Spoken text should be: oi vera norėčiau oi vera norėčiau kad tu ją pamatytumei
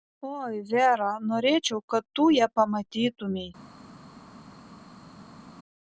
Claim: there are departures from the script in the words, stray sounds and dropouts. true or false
true